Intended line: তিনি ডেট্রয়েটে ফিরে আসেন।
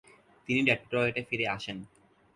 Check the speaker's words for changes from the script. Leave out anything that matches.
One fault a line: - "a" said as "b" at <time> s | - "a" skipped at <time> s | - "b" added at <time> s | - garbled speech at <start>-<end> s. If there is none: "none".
none